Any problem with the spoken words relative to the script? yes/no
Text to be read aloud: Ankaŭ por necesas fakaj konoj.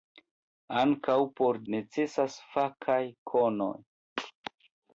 no